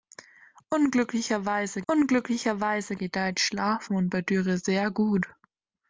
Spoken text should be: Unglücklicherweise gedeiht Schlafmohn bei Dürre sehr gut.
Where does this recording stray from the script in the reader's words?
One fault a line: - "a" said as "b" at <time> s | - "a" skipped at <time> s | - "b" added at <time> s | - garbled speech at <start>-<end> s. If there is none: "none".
- "unglücklicherweise" added at 1.9 s